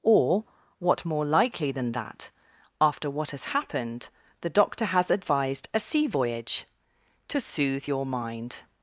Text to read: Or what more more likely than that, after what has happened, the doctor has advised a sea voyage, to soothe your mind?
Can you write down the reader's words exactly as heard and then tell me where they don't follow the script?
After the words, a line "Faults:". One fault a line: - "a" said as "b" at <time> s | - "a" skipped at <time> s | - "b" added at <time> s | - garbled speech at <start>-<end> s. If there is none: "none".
Or what more likely than that, after what has happened, the doctor has advised a sea voyage, to soothe your mind?
Faults:
- "more" skipped at 1.2 s